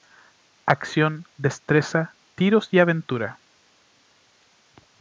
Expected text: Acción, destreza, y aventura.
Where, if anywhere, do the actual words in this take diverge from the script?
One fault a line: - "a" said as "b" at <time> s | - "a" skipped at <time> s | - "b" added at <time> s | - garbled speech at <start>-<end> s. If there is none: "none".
- "tiros" added at 2.4 s